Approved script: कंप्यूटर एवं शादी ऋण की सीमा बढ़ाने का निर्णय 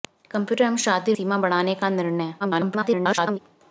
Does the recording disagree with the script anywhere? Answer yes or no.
yes